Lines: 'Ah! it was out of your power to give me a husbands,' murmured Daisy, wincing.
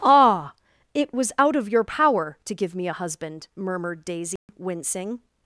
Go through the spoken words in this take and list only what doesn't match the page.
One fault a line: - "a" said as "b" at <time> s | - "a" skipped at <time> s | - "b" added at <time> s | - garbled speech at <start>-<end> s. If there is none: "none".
- "husbands" said as "husband" at 2.9 s